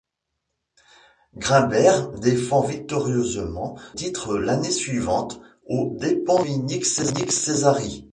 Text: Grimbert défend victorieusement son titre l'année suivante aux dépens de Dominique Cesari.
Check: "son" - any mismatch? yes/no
yes